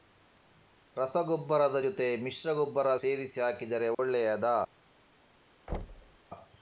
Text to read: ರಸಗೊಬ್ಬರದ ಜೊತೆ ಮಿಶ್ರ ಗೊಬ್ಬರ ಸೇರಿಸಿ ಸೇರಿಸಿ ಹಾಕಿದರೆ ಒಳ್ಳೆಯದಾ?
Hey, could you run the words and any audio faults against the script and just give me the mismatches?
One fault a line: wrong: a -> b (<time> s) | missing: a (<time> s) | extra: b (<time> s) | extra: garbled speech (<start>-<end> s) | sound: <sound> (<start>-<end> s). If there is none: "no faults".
missing: ಸೇರಿಸಿ (3.4 s)
sound: dropout (3.9-4.0 s)
sound: thud (5.7-6.2 s)